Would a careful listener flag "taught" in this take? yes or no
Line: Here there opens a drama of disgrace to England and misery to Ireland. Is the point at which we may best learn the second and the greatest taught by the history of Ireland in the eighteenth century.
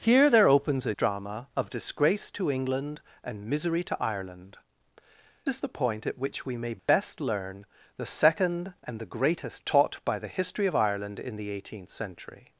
no